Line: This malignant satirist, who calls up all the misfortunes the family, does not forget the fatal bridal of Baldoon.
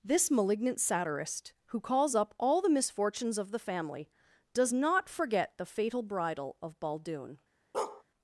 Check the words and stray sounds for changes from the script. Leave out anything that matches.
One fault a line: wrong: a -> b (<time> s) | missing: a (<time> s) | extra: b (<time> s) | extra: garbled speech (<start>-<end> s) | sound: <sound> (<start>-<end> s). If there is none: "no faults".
extra: of (3.4 s)
sound: bark (7.7-8.0 s)